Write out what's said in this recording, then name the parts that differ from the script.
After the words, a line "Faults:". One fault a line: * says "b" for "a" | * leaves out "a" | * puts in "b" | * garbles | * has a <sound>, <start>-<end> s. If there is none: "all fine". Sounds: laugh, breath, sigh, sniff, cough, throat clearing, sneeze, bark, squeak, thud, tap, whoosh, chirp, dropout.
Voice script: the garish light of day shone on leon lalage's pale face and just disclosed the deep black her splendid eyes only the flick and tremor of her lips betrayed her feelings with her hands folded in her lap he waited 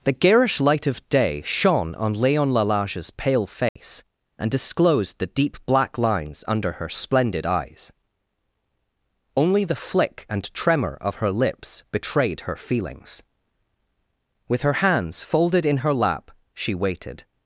the garish light of day shone on leon lalage's pale face and disclosed the deep black lines under her splendid eyes only the flick and tremor of her lips betrayed her feelings with her hands folded in her lap she waited
Faults:
* has a dropout, 3.7-3.8 s
* leaves out "just"
* puts in "lines under"
* says "she" for "he"